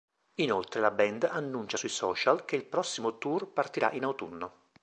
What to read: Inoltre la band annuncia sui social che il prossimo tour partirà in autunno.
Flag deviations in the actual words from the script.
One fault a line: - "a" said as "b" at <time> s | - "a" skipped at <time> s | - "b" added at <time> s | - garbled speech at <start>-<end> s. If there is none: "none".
none